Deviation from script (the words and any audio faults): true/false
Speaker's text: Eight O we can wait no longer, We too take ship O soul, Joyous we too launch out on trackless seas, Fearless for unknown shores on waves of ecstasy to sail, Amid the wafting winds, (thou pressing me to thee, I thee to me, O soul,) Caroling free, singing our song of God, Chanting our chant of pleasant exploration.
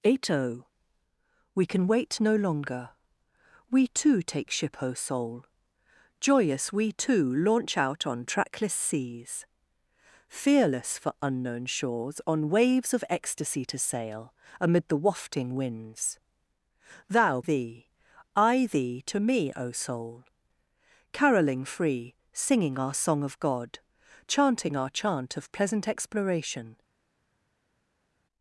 true